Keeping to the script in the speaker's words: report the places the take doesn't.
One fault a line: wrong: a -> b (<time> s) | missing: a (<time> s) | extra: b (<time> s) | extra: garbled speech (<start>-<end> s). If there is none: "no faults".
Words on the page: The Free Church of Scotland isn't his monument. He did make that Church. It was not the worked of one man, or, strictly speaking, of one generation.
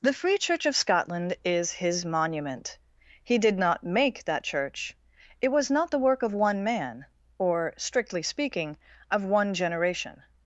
wrong: isn't -> is (1.4 s)
extra: not (3.6 s)
wrong: worked -> work (6.0 s)